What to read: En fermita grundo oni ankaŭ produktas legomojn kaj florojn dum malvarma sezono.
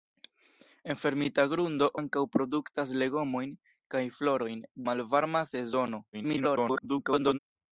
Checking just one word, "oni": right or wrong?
wrong